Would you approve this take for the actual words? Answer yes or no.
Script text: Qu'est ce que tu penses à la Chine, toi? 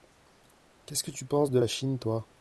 no